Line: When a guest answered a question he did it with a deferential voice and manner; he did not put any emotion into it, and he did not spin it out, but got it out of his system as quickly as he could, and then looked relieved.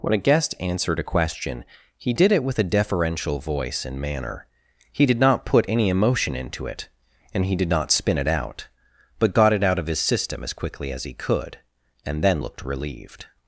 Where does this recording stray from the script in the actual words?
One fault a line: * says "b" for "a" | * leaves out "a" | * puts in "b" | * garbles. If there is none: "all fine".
all fine